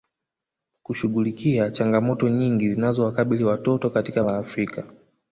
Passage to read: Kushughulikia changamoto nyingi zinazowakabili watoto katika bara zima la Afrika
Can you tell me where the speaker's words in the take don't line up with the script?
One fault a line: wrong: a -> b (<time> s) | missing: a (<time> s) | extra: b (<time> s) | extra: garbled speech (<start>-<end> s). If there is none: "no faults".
missing: bara zima (4.2 s)